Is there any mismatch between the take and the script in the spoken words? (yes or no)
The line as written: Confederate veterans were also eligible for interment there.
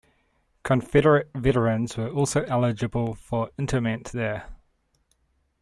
no